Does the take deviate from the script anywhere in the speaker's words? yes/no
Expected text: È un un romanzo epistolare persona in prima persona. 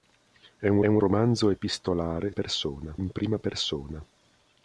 no